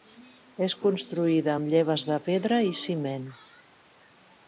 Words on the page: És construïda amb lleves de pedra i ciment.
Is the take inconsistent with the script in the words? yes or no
no